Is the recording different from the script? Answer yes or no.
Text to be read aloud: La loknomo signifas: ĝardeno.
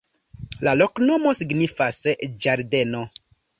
no